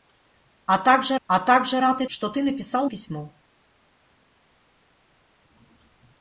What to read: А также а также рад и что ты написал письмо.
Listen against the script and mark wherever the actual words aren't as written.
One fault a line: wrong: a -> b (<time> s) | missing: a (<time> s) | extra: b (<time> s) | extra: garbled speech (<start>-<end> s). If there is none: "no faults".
no faults